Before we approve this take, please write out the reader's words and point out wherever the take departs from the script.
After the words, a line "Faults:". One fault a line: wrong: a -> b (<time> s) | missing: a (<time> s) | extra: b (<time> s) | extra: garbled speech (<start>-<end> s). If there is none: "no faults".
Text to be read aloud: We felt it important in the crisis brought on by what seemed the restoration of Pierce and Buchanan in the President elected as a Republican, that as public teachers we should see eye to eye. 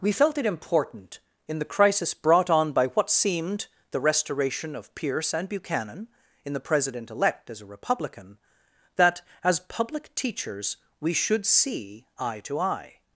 We felt it important in the crisis brought on by what seemed the restoration of Pierce and Buchanan in the President elect as a Republican, that as public teachers we should see eye to eye.
Faults:
wrong: elected -> elect (7.1 s)